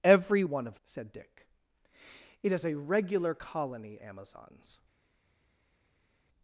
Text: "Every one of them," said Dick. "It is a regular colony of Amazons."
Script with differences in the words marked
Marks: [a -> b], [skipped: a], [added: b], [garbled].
"Every one of [skipped: them,"] said Dick. "It is a regular colony [skipped: of] Amazons."